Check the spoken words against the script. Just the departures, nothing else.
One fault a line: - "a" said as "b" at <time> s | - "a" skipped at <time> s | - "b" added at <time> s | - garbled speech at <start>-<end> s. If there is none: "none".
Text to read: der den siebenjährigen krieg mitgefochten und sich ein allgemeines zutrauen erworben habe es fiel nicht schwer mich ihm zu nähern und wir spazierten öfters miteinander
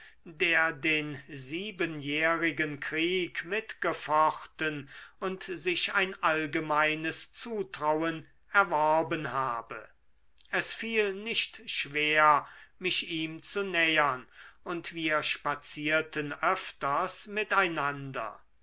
none